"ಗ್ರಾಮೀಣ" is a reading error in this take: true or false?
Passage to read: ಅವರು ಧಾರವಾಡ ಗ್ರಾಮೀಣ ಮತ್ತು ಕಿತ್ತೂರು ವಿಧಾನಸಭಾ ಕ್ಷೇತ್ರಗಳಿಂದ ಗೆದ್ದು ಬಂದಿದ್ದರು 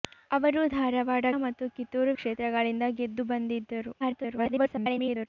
true